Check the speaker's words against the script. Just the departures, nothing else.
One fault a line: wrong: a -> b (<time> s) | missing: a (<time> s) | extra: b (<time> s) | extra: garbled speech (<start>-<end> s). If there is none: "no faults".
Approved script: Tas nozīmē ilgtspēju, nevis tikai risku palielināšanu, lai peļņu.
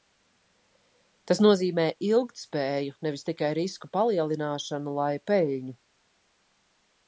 no faults